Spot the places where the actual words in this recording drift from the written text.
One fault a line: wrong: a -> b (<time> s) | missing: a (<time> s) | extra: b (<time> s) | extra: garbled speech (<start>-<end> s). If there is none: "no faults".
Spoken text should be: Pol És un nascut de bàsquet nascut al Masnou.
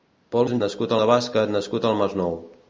no faults